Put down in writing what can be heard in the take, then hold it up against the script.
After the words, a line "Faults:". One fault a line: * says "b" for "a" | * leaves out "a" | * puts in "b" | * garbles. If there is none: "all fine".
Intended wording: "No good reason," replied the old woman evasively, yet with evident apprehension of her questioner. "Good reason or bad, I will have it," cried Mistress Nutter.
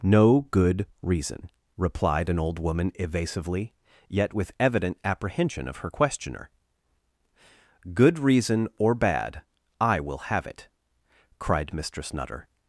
"No good reason," replied an old woman evasively, yet with evident apprehension of her questioner. "Good reason or bad, I will have it," cried Mistress Nutter.
Faults:
* says "an" for "the"